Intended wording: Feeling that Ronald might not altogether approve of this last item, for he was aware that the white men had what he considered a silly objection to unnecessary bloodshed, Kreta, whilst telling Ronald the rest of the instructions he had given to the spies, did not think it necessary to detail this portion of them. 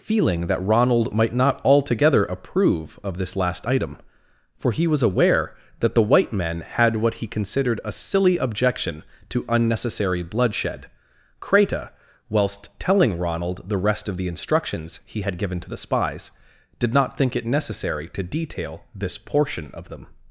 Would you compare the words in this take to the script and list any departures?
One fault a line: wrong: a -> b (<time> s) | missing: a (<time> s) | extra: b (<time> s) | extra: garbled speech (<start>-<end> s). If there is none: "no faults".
no faults